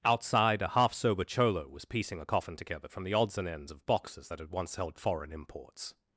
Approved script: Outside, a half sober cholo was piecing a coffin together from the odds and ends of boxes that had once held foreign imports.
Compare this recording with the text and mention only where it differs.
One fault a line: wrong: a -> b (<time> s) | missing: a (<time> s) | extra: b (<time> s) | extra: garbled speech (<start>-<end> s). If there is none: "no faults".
no faults